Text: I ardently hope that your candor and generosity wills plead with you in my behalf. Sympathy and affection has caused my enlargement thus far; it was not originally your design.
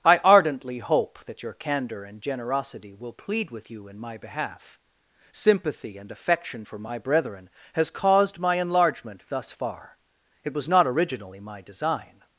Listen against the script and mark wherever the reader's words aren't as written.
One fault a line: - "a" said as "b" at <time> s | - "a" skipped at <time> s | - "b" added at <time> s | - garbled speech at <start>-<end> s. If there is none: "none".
- "wills" said as "will" at 2.9 s
- "for my brethren" added at 6.6 s
- "your" said as "my" at 11.4 s